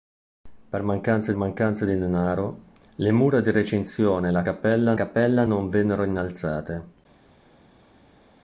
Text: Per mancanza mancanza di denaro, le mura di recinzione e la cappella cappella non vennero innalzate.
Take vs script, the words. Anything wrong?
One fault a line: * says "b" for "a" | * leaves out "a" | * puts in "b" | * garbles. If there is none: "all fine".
all fine